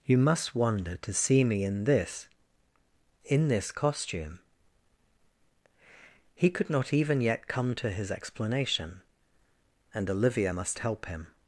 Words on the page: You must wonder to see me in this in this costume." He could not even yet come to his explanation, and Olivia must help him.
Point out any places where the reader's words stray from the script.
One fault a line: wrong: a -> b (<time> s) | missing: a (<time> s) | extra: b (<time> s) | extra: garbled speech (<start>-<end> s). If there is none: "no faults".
no faults